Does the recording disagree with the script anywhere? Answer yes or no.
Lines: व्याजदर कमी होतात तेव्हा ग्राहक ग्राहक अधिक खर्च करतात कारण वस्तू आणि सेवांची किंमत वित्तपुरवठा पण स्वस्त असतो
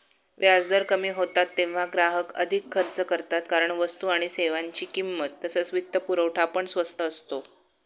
yes